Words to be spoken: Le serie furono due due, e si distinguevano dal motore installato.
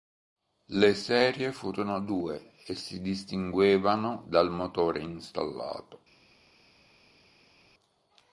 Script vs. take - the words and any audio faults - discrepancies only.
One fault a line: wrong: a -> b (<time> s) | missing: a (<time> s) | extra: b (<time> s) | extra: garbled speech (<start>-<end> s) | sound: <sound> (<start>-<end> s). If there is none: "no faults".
missing: due (2.5 s)